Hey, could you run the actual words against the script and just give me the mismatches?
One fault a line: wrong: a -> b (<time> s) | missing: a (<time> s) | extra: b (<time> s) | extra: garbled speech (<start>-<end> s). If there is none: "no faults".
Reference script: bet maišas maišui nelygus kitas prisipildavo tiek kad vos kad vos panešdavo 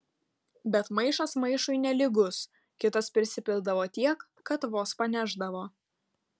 missing: kad vos (5.0 s)